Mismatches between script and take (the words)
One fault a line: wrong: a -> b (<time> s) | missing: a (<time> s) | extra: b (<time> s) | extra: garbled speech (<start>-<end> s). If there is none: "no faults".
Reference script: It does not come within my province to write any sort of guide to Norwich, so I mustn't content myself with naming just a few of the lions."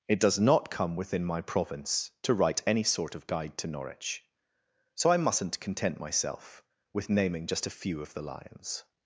no faults